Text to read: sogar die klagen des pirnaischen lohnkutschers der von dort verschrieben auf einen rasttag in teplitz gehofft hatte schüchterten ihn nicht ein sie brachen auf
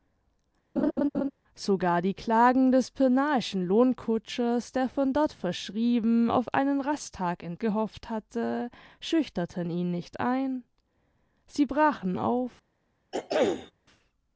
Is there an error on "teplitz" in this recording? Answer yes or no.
yes